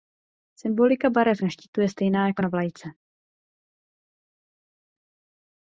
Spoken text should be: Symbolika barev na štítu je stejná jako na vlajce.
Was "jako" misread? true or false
false